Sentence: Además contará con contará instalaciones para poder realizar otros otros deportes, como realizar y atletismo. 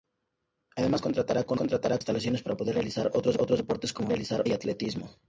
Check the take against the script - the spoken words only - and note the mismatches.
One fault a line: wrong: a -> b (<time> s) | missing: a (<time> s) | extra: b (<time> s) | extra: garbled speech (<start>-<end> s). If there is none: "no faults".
no faults